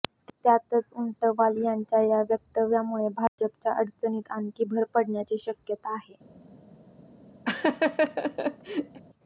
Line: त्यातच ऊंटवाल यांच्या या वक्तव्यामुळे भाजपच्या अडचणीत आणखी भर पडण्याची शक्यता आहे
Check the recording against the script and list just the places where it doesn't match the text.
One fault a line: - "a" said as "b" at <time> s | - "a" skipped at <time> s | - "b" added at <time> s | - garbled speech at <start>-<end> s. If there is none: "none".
none